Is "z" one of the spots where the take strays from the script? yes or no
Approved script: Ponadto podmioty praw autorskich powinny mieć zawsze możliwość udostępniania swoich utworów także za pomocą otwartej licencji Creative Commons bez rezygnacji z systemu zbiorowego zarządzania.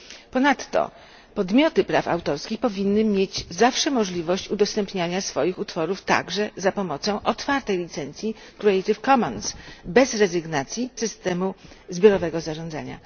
yes